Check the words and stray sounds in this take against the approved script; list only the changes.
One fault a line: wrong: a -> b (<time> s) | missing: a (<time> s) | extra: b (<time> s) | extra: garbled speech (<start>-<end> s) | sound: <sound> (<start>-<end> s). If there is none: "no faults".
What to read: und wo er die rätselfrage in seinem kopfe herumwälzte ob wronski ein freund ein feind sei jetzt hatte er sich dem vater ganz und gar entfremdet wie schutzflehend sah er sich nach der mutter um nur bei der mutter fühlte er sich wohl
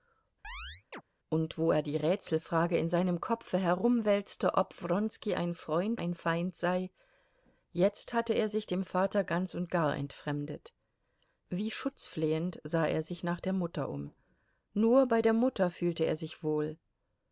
sound: chirp (0.4-1.0 s)